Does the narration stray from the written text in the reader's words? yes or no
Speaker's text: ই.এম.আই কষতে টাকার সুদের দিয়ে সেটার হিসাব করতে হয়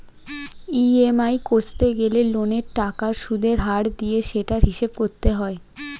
yes